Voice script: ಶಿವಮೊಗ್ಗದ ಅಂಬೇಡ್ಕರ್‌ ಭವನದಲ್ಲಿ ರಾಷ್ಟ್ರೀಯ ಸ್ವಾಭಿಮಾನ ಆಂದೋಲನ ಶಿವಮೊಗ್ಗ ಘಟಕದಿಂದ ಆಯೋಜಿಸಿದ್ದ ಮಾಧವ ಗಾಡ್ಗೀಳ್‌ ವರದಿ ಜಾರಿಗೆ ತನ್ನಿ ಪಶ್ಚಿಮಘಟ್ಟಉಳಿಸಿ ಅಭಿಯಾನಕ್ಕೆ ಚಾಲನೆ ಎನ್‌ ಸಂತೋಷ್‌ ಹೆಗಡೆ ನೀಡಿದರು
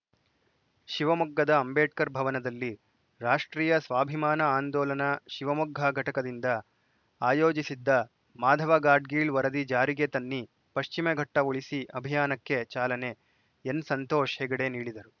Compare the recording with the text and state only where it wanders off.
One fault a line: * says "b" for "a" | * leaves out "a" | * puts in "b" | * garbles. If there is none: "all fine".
all fine